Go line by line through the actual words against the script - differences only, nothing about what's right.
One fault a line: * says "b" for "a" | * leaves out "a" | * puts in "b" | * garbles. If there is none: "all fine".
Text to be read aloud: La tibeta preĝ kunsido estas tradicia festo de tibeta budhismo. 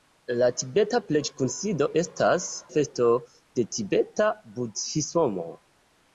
* leaves out "tradicia"